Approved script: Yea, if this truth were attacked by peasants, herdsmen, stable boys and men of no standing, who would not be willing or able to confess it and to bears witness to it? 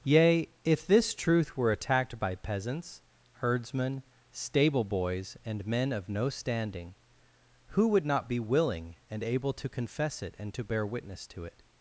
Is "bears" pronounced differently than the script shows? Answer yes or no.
yes